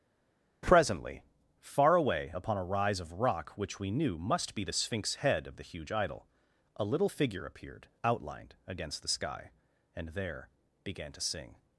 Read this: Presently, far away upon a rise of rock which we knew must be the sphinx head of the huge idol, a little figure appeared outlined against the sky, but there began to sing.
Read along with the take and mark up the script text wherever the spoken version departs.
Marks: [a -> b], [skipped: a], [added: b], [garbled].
Presently, far away upon a rise of rock which we knew must be the sphinx head of the huge idol, a little figure appeared outlined against the sky, [but -> and] there began to sing.